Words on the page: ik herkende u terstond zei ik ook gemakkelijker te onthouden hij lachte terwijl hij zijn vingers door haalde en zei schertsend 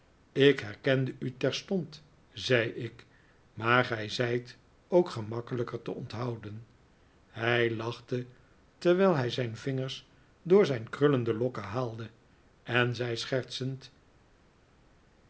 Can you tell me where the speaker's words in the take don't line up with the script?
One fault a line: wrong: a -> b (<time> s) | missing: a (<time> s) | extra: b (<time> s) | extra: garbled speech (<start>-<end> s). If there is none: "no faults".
extra: maar gij zijt (3.5 s)
extra: zijn krullende lokken (10.7 s)